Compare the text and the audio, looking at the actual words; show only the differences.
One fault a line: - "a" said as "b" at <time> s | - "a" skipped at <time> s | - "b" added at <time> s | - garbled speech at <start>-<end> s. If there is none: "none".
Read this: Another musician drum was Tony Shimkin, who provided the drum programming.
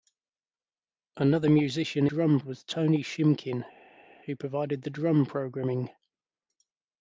none